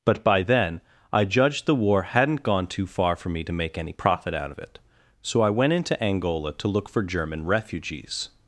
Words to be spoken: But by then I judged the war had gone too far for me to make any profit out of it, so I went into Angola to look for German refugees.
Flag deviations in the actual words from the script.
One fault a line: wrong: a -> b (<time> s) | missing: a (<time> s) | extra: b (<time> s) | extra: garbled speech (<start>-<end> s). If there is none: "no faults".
wrong: had -> hadn't (2.0 s)